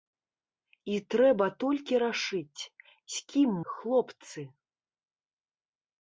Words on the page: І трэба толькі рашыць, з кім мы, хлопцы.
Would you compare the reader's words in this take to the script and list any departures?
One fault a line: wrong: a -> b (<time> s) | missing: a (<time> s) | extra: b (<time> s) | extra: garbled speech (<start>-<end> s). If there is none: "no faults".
missing: мы (3.5 s)